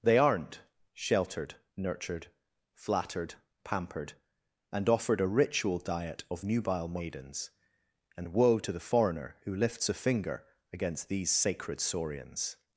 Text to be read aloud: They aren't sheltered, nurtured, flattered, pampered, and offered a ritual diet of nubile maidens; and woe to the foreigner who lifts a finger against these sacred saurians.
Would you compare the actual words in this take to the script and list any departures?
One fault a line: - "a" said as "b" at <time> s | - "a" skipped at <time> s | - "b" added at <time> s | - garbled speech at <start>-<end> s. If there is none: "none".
none